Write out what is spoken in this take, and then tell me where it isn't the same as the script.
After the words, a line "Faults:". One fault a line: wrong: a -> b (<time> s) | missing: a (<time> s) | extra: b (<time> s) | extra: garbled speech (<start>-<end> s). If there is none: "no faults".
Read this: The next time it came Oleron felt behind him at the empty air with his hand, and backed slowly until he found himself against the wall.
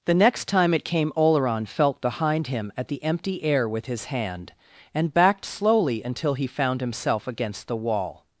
The next time it came Oleron felt behind him at the empty air with his hand, and backed slowly until he found himself against the wall.
Faults:
no faults